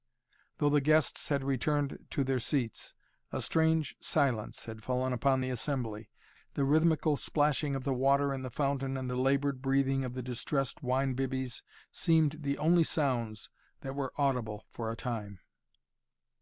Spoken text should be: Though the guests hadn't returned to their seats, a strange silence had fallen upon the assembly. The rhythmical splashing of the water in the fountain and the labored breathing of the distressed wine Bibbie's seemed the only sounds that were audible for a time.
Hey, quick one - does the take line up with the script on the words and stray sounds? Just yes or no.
no